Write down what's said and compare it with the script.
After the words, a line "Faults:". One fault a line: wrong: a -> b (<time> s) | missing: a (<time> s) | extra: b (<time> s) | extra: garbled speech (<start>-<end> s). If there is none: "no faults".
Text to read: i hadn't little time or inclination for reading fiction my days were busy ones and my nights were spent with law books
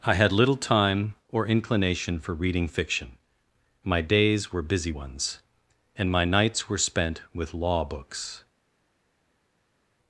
i had little time or inclination for reading fiction my days were busy ones and my nights were spent with law books
Faults:
wrong: hadn't -> had (0.1 s)